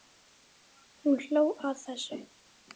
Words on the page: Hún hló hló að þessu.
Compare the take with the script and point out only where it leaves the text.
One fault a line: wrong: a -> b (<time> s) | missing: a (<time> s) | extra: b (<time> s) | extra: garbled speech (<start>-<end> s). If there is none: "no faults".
missing: hló (1.4 s)